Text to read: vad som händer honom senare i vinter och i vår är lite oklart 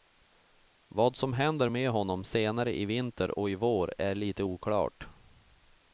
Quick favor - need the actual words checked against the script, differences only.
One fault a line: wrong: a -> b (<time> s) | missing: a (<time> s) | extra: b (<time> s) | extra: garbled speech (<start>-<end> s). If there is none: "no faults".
extra: med (1.7 s)